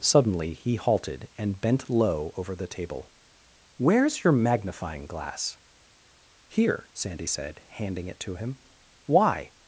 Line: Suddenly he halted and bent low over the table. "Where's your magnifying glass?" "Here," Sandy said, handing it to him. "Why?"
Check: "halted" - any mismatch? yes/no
no